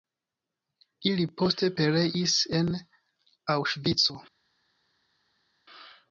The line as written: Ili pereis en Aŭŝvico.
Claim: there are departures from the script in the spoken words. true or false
true